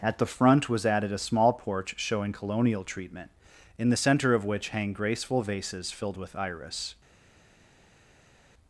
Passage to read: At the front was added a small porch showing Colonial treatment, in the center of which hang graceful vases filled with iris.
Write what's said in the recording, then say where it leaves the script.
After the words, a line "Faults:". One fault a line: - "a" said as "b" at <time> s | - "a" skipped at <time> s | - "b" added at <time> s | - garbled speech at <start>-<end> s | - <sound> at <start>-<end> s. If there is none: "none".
At the front was added a small porch showing Colonial treatment, in the center of which hang graceful vases filled with iris.
Faults:
none